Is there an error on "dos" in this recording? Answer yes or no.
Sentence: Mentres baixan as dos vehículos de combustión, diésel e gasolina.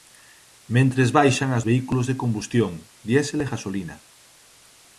yes